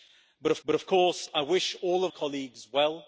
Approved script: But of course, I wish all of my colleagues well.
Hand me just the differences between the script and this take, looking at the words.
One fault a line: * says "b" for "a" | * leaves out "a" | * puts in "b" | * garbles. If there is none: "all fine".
* puts in "but of"
* leaves out "my"